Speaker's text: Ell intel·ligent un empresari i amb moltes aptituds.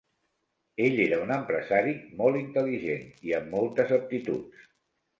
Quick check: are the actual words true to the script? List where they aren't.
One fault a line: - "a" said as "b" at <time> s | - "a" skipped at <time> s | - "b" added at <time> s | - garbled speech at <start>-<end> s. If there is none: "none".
- "intel·ligent" said as "era" at 1.0 s
- "molt intel·ligent" added at 2.2 s